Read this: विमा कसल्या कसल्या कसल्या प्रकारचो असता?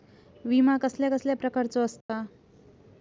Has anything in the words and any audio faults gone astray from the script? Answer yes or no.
yes